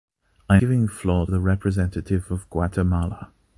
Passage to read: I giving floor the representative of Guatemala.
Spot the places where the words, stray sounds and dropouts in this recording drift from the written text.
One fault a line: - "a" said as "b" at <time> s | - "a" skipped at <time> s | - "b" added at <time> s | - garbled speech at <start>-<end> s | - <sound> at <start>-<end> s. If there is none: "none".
none